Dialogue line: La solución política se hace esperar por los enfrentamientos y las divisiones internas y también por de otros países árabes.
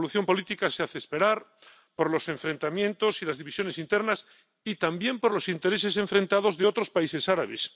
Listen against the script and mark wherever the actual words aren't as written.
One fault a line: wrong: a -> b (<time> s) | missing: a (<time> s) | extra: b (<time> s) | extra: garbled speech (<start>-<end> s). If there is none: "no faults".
extra: los intereses enfrentados (5.3 s)